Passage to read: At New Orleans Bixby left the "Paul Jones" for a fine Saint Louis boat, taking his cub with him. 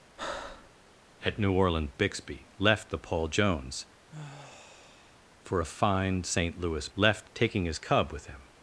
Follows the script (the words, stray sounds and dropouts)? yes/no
no